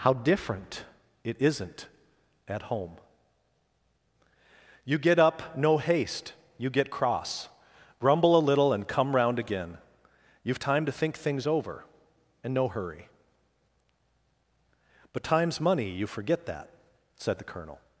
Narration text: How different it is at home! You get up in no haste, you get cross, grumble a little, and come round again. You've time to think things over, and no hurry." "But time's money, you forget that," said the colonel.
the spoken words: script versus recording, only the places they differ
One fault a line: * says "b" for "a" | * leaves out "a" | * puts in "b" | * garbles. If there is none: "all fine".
* says "isn't" for "is"
* leaves out "in"